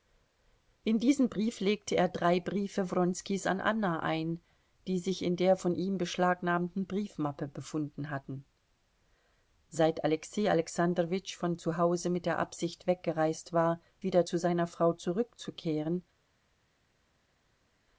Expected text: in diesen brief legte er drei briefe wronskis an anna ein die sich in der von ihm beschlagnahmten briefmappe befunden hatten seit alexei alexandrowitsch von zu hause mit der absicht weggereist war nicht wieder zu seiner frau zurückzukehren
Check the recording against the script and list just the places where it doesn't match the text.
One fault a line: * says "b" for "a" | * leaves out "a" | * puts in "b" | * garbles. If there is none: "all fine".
* leaves out "nicht"